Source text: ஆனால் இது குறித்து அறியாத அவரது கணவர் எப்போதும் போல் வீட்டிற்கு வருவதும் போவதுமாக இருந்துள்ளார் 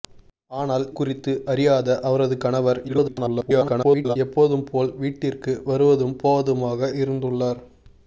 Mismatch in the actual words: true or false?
true